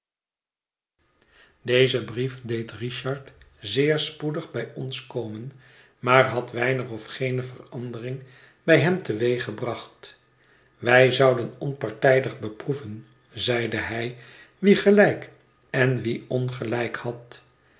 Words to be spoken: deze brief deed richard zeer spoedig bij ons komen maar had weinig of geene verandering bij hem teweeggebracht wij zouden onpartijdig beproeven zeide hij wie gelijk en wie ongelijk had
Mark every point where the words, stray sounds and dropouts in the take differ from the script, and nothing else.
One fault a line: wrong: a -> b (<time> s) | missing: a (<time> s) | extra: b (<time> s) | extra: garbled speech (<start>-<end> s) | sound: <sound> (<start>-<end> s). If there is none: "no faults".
no faults